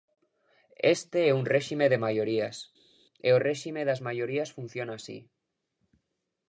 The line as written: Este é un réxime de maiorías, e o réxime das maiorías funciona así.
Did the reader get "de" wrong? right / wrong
right